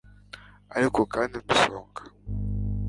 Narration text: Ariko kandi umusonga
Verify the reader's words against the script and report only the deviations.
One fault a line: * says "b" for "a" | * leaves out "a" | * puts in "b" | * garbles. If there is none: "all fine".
all fine